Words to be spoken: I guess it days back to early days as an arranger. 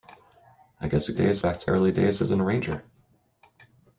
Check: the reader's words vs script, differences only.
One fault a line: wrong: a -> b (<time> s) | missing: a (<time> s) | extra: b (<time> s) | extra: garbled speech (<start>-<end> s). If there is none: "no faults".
no faults